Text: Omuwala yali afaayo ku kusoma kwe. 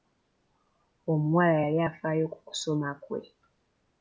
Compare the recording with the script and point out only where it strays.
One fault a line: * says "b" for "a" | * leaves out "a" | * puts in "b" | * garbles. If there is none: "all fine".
all fine